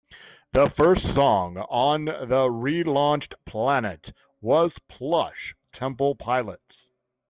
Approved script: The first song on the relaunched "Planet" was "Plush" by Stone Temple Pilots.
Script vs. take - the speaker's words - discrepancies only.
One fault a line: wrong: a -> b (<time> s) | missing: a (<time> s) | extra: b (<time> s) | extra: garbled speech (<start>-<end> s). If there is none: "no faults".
missing: by Stone (5.5 s)